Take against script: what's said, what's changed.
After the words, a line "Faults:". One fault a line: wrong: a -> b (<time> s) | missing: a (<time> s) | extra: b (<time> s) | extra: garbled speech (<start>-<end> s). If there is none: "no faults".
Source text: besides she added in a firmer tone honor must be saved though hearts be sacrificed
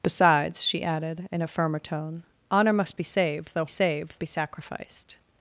besides she added in a firmer tone honor must be saved though saved be sacrificed
Faults:
wrong: hearts -> saved (3.7 s)